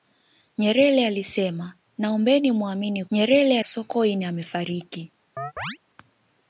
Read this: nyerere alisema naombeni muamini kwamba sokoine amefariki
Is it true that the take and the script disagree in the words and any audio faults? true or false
true